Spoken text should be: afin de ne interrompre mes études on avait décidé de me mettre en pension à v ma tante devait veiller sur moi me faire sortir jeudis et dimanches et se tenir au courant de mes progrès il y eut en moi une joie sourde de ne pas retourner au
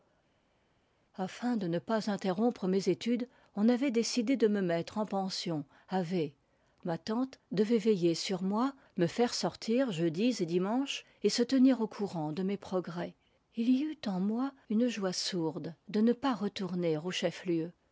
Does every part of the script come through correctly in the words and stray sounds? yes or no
no